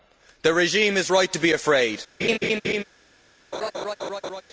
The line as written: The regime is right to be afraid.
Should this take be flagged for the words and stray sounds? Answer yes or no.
yes